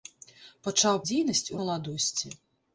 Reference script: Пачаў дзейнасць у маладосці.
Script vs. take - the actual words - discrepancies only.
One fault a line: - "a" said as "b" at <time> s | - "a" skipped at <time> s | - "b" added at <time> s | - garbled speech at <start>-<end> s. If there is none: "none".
none